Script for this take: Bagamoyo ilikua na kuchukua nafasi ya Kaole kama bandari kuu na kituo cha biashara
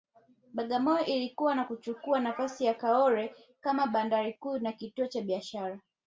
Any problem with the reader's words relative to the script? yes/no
no